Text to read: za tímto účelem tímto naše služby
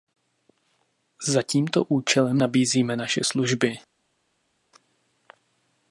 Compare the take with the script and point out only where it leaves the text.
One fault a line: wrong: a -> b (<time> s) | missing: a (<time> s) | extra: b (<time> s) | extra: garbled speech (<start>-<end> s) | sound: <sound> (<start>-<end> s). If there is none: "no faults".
wrong: tímto -> nabízíme (2.3 s)